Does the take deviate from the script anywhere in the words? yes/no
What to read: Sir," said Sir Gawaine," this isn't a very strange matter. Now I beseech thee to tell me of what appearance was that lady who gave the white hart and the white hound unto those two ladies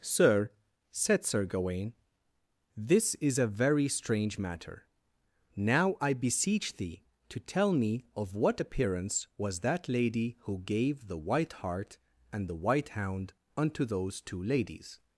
yes